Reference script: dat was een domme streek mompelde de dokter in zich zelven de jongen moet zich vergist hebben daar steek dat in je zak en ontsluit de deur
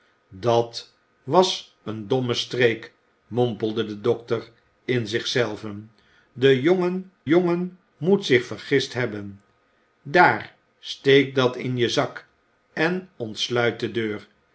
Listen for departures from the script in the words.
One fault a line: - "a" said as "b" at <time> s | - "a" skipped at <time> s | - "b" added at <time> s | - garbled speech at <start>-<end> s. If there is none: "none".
- "jongen" added at 7.3 s